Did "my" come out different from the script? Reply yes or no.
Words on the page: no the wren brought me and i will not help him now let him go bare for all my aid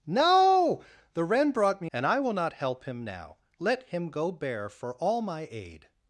no